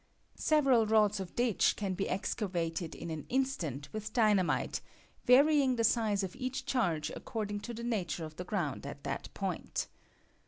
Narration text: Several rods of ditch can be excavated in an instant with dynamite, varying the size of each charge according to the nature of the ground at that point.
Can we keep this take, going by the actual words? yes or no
yes